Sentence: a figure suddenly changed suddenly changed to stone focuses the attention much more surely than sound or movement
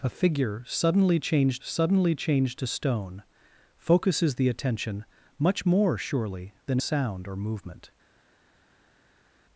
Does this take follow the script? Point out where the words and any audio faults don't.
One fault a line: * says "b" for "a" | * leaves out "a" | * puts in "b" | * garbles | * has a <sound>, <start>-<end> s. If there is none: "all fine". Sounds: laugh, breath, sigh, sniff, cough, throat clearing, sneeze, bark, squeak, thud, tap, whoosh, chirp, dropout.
all fine